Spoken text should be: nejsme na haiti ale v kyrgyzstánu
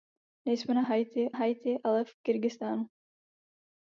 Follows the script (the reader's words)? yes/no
no